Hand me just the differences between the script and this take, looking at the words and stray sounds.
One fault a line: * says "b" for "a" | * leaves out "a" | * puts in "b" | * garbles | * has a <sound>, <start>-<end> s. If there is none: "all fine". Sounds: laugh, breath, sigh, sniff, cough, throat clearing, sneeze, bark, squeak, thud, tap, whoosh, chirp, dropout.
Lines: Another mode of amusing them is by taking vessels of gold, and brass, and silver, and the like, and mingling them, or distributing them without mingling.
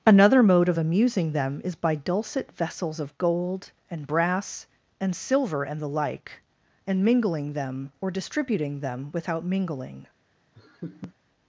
* says "dulcet" for "taking"
* has a laugh, 10.5-11.1 s